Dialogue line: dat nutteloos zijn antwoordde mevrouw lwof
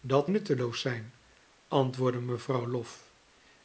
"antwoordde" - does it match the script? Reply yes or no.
yes